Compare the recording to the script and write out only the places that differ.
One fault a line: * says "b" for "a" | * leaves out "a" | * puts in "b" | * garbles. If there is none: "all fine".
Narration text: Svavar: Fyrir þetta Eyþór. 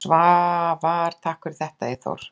* puts in "Takk"